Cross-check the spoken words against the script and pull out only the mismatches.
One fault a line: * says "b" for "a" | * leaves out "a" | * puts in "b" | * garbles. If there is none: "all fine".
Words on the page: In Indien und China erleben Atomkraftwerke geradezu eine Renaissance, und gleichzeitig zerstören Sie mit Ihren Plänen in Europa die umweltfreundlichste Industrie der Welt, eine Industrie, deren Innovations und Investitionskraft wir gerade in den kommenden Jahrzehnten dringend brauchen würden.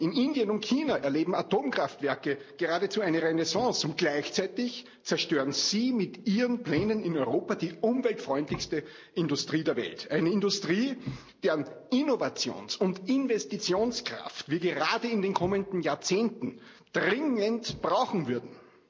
all fine